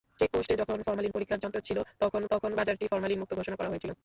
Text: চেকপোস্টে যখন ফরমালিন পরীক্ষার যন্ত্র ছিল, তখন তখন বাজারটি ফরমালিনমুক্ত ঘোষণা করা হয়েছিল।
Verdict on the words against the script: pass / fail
pass